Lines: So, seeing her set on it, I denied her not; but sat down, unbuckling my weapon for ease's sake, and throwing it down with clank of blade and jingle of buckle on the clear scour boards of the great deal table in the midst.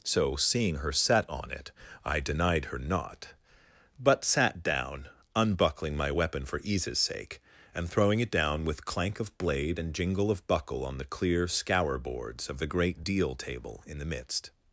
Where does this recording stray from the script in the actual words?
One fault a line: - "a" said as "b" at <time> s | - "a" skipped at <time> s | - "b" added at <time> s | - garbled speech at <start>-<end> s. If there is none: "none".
none